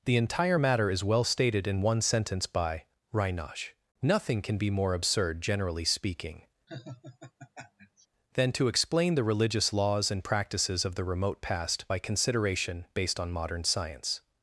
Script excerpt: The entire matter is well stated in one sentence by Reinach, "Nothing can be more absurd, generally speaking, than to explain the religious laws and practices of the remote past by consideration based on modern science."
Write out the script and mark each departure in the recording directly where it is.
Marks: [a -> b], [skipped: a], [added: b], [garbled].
The entire matter is well stated in one sentence by Reinach, "Nothing can be more absurd, generally speaking, than to explain the religious laws and practices of the remote past by consideration based on modern science."